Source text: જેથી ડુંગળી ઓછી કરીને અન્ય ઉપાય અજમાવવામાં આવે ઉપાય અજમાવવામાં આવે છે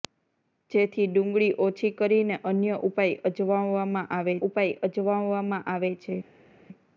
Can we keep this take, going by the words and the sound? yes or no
yes